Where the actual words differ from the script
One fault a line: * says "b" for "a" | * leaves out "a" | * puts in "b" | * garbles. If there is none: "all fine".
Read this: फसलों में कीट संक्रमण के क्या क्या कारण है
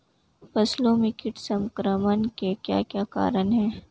all fine